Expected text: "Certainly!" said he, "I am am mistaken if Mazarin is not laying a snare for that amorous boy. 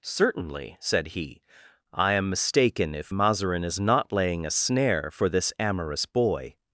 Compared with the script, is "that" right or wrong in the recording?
wrong